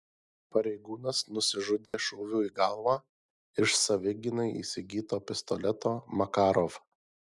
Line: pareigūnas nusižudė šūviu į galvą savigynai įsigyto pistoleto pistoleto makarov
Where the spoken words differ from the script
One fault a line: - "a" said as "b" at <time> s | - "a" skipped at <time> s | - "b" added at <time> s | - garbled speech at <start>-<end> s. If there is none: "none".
- "iš" added at 3.6 s
- "pistoleto" skipped at 5.9 s